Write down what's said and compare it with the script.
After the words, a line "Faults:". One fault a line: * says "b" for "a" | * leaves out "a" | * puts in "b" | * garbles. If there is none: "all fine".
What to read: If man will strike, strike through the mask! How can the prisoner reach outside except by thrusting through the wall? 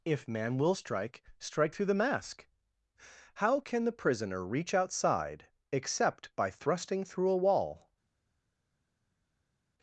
If man will strike, strike through the mask! How can the prisoner reach outside except by thrusting through a wall?
Faults:
* says "a" for "the"